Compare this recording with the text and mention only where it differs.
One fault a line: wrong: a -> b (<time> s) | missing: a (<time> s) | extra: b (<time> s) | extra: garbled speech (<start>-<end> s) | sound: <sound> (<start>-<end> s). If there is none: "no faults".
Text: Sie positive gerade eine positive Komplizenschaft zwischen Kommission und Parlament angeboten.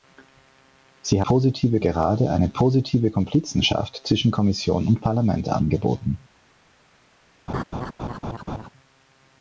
sound: laugh (7.5-8.7 s)